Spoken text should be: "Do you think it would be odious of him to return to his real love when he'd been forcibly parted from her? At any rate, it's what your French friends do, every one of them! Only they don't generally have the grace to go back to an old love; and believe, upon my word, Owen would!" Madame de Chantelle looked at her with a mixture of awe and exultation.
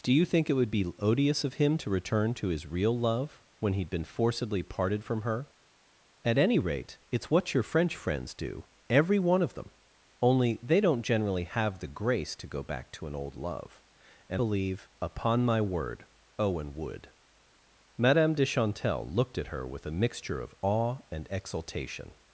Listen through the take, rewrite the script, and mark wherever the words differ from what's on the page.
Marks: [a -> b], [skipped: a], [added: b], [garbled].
"Do you think it would be odious of him to return to his real love when he'd been forcibly parted from her? At any rate, it's what your French friends do, every one of them! Only they don't generally have the grace to go back to an old love; and believe, upon my word, Owen would!" Madame de Chantelle looked at her with a mixture of awe and exultation.